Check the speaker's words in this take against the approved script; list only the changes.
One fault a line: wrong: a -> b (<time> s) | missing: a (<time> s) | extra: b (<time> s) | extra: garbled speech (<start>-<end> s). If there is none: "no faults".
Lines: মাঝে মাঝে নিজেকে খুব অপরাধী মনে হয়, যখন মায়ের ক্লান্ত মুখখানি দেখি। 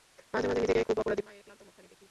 missing: মনে হয় যখন (1.2 s)